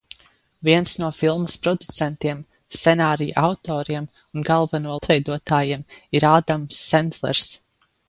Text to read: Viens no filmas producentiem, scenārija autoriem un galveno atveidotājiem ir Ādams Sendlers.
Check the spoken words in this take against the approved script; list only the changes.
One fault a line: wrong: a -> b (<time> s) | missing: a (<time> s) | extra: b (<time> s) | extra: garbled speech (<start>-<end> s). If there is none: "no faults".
no faults